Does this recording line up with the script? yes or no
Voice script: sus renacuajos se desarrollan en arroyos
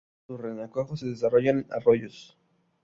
yes